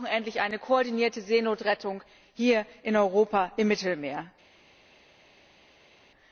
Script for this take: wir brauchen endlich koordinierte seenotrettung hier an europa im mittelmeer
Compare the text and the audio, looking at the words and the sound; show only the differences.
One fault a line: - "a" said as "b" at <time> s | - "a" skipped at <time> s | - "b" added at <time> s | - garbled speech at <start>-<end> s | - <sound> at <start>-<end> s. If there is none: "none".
- "eine" added at 0.4 s
- "an" said as "in" at 2.8 s